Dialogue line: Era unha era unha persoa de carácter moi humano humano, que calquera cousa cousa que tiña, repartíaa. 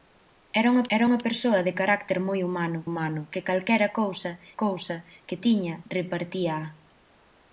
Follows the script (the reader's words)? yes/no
yes